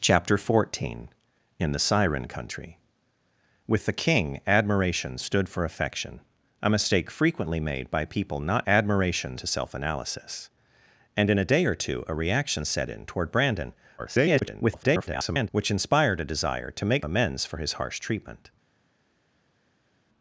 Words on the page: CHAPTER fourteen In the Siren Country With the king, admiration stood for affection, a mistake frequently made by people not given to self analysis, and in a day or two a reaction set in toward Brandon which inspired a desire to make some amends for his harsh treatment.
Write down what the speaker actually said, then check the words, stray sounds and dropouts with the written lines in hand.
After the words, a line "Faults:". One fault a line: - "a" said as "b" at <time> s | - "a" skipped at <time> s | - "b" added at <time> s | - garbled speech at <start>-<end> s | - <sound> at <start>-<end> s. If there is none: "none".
CHAPTER fourteen In the Siren Country With the king, admiration stood for affection, a mistake frequently made by people not admiration to self analysis, and in a day or two a reaction set in toward Brandon [garbled] which inspired a desire to make amends for his harsh treatment.
Faults:
- "given" said as "admiration" at 8.7 s
- garbled speech at 14.0-15.5 s
- "some" skipped at 17.1 s